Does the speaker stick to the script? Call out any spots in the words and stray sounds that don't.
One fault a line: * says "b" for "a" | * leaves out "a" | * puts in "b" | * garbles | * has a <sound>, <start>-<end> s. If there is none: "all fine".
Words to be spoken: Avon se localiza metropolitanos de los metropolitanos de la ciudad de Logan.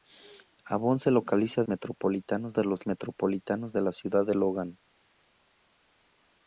all fine